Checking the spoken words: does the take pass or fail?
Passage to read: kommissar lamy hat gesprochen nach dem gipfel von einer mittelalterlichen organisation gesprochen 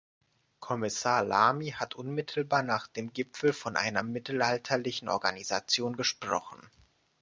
fail